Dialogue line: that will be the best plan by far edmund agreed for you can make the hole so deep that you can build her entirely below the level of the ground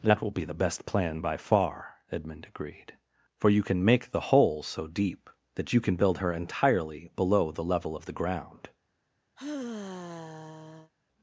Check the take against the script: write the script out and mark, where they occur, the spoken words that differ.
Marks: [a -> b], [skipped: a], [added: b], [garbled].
that will be the best plan by far edmund agreed for you can make the hole so deep that you can build her entirely below the level of the ground